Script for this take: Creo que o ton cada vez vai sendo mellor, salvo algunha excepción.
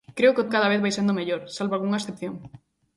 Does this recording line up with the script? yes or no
no